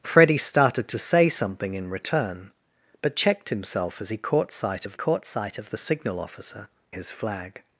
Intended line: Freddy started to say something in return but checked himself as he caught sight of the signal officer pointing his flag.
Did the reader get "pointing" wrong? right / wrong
wrong